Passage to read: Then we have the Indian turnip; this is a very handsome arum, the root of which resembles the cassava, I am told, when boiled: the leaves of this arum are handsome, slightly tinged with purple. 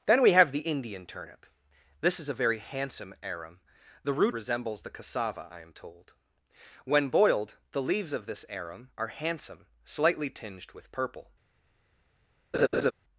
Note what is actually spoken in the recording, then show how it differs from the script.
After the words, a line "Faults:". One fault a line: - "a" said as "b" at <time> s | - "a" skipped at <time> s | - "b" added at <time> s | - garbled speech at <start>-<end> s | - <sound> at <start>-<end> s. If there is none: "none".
Then we have the Indian turnip; this is a very handsome arum, the root resembles the cassava, I am told, when boiled: the leaves of this arum are handsome, slightly tinged with purple.
Faults:
- "of which" skipped at 4.3 s
- laugh at 12.5-12.9 s